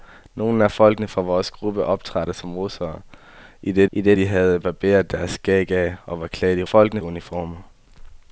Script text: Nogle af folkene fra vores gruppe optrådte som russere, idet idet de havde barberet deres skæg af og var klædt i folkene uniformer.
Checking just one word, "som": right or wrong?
right